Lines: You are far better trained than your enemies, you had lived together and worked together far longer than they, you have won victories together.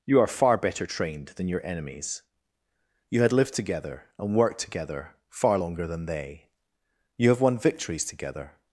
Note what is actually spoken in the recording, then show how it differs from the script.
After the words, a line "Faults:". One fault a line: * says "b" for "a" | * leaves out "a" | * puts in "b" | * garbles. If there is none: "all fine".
You are far better trained than your enemies, you had lived together and worked together far longer than they, you have won victories together.
Faults:
all fine